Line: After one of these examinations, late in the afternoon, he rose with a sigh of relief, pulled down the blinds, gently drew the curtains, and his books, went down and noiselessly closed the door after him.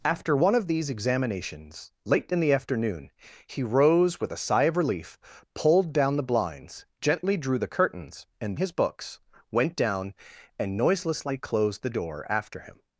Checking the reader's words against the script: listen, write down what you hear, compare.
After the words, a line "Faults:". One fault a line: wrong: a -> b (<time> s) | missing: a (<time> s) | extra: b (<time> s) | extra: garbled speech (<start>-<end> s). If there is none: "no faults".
After one of these examinations, late in the afternoon, he rose with a sigh of relief, pulled down the blinds, gently drew the curtains, and his books, went down and noiselessly closed the door after him.
Faults:
no faults